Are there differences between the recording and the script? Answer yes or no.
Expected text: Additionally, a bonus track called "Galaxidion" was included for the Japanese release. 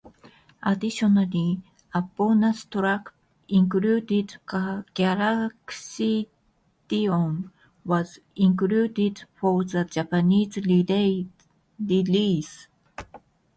yes